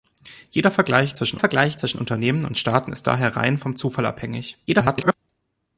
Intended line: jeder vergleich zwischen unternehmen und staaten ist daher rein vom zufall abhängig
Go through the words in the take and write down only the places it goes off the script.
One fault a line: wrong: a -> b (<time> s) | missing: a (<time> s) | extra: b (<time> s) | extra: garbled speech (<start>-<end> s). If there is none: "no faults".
extra: vergleich zwischen (1.4 s)
extra: garbled speech (4.7-5.1 s)